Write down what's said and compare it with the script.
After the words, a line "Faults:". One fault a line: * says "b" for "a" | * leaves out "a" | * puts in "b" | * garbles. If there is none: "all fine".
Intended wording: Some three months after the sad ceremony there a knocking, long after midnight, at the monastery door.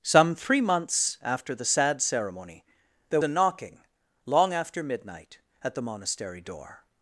Some three months after the sad ceremony there a knocking, long after midnight, at the monastery door.
Faults:
all fine